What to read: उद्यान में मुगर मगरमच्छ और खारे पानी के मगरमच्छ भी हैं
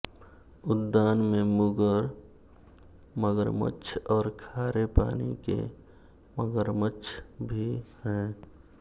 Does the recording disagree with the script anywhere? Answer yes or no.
no